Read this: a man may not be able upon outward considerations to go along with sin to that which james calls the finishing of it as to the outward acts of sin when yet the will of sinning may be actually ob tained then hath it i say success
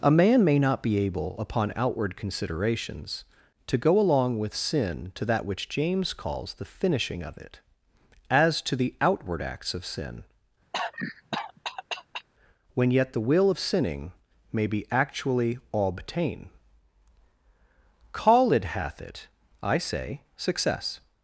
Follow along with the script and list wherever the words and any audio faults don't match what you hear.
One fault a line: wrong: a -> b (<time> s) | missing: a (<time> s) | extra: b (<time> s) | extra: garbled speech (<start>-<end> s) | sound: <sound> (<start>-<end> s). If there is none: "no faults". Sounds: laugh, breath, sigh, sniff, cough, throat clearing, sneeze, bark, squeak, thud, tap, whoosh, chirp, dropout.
sound: cough (10.7-12.3 s)
wrong: ob tained then -> obtain call it (15.7 s)